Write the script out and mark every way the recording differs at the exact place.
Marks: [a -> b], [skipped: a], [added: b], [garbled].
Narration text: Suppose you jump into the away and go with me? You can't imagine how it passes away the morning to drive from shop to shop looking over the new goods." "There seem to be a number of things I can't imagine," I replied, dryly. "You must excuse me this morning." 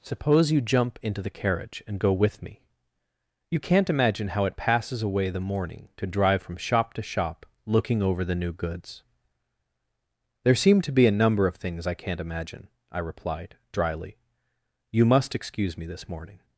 Suppose you jump into the [away -> carriage] and go with me? You can't imagine how it passes away the morning to drive from shop to shop looking over the new goods." "There seem to be a number of things I can't imagine," I replied, dryly. "You must excuse me this morning."